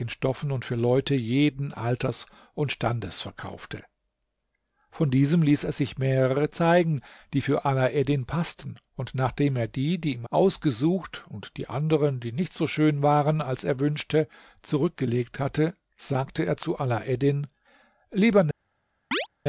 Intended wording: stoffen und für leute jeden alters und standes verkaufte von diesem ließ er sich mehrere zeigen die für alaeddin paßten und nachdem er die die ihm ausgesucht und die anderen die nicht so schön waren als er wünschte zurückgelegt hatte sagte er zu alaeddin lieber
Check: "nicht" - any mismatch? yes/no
no